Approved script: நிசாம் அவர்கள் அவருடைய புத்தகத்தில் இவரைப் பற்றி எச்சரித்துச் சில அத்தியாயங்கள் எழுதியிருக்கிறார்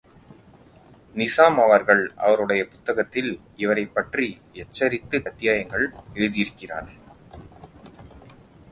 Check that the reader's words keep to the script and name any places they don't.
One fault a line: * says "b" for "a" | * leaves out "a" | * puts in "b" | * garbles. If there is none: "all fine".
* leaves out "சில"